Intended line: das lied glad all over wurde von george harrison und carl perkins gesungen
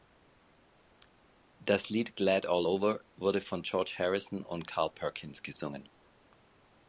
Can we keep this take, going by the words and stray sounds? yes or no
yes